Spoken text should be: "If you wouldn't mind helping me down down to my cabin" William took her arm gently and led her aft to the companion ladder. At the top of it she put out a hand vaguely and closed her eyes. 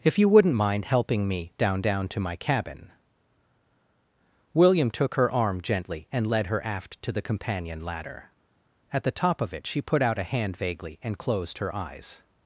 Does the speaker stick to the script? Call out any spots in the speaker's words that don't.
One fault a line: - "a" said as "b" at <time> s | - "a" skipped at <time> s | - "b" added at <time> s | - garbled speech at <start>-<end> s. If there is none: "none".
none